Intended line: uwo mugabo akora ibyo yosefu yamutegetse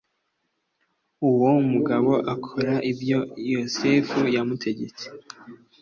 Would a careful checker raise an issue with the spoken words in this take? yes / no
no